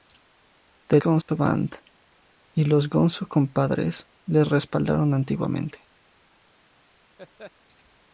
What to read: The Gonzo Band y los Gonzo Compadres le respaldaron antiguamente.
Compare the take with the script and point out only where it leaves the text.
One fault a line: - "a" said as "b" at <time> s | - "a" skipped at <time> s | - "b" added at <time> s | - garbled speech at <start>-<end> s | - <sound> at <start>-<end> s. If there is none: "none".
- dropout at 1.2-1.3 s
- laugh at 7.2-7.5 s